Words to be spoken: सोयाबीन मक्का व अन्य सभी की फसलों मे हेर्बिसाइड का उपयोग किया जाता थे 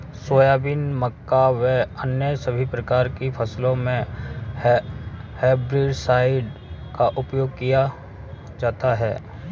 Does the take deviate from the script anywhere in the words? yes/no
yes